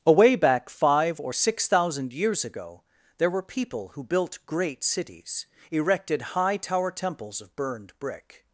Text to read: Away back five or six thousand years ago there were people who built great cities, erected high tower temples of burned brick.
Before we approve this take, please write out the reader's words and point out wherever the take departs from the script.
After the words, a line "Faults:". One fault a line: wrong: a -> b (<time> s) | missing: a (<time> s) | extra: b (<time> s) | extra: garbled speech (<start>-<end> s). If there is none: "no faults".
Away back five or six thousand years ago there were people who built great cities, erected high tower temples of burned brick.
Faults:
no faults